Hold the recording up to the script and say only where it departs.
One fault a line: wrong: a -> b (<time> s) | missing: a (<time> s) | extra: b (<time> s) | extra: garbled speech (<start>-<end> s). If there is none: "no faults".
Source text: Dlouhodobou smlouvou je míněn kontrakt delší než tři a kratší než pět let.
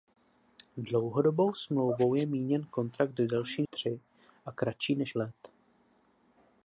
missing: než (3.6 s)
missing: pět (5.1 s)